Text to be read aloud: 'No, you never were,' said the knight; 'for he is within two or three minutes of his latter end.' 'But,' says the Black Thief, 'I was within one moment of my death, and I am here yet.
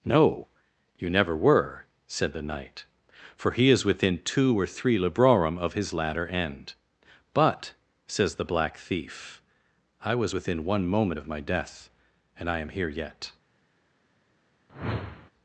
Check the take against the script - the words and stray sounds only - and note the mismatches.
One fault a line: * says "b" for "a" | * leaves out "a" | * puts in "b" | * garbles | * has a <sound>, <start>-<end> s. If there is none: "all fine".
* says "librorum" for "minutes"
* has a whoosh, 14.7-15.3 s